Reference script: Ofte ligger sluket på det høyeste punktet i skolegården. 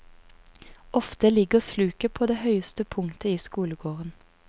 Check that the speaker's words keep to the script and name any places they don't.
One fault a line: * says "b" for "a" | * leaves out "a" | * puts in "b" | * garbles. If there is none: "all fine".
all fine